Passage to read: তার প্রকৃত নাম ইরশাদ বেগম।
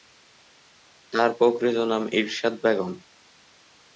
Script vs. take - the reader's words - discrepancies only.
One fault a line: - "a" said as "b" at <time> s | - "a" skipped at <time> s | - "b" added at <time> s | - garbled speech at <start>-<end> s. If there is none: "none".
none